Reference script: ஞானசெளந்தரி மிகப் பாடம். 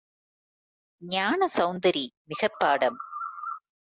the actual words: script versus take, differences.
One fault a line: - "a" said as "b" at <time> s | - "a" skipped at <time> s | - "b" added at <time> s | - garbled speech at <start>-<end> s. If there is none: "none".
none